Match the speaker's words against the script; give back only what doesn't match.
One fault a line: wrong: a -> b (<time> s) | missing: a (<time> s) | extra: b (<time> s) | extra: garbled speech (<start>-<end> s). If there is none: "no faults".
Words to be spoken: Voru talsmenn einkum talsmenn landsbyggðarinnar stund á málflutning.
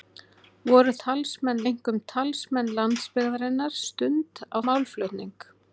no faults